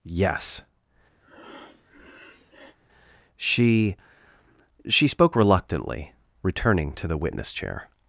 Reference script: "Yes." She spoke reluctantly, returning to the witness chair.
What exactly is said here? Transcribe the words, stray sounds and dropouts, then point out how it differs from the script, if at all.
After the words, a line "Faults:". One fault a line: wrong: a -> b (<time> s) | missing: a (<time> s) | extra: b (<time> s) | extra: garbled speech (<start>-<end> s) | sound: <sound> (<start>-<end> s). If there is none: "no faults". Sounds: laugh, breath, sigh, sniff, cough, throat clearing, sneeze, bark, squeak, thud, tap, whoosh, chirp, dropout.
"Yes." She She spoke reluctantly, returning to the witness chair.
Faults:
sound: breath (1.2-2.8 s)
extra: She (4.9 s)